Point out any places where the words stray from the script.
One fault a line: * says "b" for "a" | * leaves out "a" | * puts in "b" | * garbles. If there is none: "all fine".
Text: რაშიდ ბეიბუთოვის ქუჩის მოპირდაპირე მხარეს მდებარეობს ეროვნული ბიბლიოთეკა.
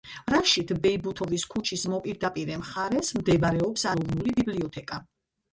all fine